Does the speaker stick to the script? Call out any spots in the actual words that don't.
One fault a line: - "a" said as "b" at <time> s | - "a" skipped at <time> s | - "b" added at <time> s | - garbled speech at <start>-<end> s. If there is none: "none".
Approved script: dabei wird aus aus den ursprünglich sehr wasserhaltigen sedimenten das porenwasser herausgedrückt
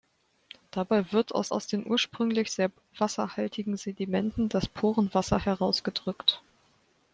none